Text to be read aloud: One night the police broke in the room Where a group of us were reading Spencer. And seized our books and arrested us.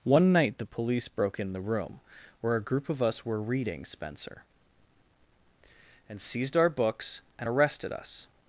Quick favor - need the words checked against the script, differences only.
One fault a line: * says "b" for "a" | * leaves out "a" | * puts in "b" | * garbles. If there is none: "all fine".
all fine